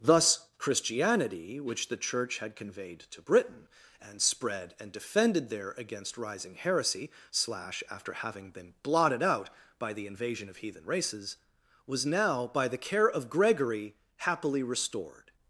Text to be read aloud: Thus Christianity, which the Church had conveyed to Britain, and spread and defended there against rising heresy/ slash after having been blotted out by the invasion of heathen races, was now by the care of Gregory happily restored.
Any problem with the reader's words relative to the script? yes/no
no